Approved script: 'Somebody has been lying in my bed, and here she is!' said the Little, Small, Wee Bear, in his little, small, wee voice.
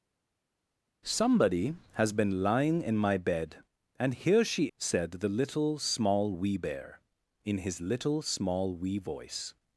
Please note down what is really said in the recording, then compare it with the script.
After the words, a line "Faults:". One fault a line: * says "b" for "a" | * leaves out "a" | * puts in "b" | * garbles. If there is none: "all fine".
'Somebody has been lying in my bed, and here she!' said the Little, Small, Wee Bear, in his little, small, wee voice.
Faults:
* leaves out "is"